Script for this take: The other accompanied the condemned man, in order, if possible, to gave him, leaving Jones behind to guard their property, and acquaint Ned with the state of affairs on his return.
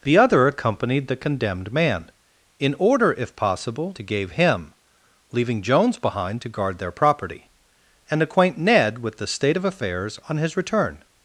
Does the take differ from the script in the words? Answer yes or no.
no